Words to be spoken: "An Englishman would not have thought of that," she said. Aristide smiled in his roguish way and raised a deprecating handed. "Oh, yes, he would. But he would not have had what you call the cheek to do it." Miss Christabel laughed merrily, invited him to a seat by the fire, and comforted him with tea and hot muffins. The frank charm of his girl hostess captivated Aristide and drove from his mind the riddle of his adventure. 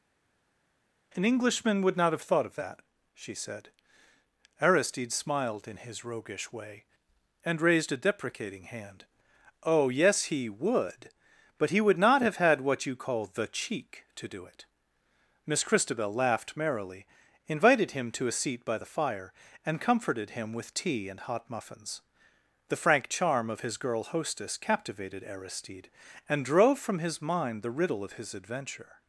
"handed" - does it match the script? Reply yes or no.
no